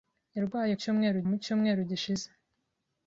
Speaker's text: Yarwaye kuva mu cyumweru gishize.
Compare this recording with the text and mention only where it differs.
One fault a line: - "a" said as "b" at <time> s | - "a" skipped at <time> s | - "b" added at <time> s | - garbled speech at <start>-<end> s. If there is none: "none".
- "kuva" said as "cyumweru" at 0.8 s